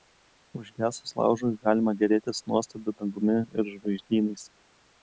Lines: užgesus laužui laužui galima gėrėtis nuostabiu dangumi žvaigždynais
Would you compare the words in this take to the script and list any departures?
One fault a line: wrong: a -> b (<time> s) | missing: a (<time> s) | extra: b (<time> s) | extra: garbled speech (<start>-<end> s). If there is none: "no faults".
missing: laužui (1.5 s)
extra: ir (3.4 s)